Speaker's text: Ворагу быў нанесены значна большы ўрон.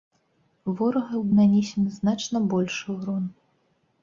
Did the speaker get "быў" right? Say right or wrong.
wrong